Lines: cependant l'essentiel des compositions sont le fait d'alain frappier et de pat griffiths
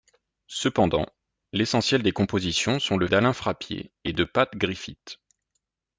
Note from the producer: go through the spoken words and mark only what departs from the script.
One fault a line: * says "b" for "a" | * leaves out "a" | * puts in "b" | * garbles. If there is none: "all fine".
* leaves out "fait"